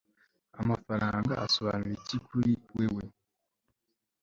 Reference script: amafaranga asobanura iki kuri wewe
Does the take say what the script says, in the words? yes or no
yes